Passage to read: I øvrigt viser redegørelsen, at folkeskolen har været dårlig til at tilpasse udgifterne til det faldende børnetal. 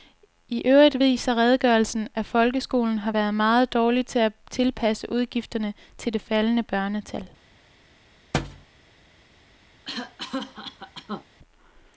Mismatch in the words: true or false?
true